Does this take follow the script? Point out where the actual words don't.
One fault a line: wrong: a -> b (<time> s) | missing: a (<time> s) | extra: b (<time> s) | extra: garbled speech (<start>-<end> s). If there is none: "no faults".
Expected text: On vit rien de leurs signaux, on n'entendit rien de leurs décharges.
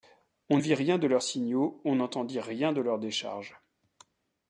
no faults